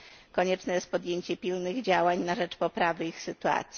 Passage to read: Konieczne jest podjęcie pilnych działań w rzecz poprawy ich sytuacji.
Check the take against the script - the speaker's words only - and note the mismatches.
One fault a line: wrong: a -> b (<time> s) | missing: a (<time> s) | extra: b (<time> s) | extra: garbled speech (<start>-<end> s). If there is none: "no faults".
wrong: w -> na (2.2 s)